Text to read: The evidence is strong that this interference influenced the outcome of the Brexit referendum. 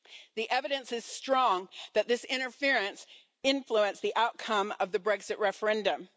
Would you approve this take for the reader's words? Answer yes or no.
yes